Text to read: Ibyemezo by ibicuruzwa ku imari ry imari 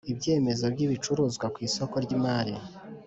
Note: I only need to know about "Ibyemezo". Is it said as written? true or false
true